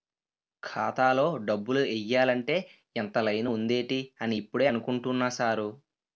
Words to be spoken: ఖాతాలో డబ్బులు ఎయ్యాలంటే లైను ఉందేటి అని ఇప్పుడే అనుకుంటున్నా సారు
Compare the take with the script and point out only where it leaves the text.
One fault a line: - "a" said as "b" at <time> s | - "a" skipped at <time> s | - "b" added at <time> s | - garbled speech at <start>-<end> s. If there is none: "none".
- "ఇంత" added at 3.0 s